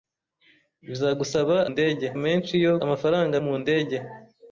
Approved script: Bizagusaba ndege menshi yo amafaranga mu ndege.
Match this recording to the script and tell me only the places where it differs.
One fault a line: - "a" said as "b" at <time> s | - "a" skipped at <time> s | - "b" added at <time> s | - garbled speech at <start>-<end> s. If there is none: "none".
none